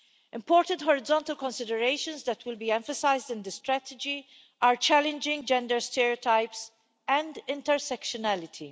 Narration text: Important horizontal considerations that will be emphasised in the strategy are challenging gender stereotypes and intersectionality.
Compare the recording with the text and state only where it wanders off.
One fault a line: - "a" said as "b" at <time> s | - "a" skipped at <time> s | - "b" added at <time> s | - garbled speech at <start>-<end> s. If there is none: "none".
none